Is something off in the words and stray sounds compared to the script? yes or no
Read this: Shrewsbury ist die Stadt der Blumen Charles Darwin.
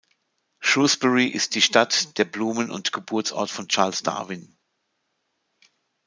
yes